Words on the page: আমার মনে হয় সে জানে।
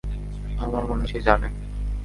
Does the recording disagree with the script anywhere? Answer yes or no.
yes